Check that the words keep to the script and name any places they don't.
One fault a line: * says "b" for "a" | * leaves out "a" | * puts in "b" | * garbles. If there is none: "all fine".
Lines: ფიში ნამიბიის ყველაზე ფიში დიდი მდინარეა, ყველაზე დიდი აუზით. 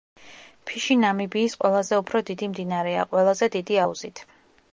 * says "უფრო" for "ფიში"